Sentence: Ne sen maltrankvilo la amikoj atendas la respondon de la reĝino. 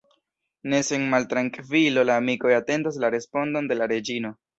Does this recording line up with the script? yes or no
yes